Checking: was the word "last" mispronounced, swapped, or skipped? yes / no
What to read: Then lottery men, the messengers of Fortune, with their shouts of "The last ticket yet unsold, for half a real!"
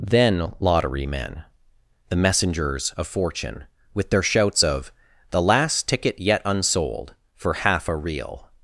no